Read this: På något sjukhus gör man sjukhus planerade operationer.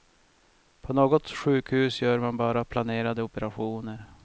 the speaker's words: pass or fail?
fail